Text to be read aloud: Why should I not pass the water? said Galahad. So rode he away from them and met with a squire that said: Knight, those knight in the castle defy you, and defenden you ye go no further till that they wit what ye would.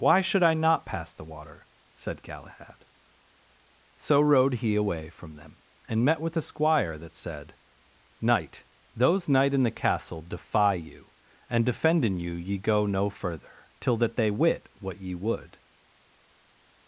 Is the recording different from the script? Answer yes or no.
no